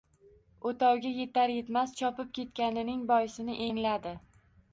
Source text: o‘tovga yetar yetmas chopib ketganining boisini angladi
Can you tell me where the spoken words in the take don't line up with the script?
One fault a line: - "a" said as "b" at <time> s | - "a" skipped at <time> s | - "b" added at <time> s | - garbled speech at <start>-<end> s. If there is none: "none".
none